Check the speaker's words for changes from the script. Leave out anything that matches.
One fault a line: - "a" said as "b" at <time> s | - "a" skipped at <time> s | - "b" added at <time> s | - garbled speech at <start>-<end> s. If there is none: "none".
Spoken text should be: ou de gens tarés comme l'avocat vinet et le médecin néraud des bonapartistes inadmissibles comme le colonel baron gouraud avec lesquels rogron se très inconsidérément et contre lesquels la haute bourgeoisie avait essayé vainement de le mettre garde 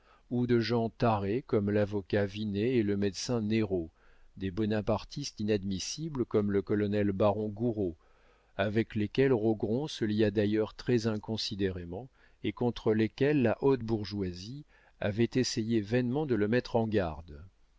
- "lia d'ailleurs" added at 10.0 s
- "en" added at 16.7 s